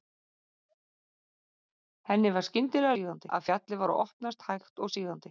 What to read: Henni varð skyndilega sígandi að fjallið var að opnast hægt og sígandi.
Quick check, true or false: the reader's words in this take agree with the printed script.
true